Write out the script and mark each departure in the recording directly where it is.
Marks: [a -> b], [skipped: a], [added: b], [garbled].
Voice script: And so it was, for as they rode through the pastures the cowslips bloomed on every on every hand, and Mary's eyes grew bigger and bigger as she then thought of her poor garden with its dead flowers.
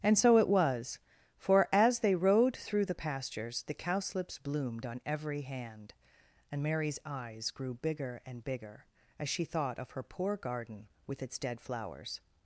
And so it was, for as they rode through the pastures the cowslips bloomed on every [skipped: on every] hand, and Mary's eyes grew bigger and bigger as she [skipped: then] thought of her poor garden with its dead flowers.